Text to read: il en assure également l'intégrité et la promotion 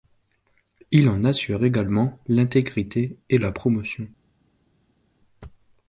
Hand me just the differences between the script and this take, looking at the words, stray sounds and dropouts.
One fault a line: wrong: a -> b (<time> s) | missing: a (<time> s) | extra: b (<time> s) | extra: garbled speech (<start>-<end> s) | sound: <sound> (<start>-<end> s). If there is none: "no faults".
no faults